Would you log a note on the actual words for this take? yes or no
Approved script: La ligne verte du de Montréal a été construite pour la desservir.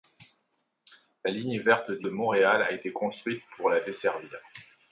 no